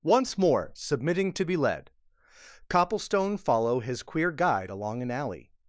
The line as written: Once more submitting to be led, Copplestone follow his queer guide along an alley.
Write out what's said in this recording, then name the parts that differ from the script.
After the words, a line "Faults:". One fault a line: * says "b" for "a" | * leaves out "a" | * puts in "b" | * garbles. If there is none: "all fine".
Once more submitting to be led, Copplestone follow his queer guide along an alley.
Faults:
all fine